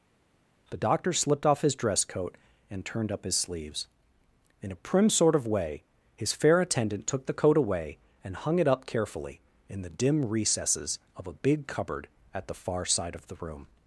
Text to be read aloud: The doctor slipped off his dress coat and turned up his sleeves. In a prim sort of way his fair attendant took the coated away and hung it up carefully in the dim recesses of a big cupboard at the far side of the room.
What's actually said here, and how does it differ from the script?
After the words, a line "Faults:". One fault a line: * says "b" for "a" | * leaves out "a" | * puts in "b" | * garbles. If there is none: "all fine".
The doctor slipped off his dress coat and turned up his sleeves. In a prim sort of way his fair attendant took the coat away and hung it up carefully in the dim recesses of a big cupboard at the far side of the room.
Faults:
* says "coat" for "coated"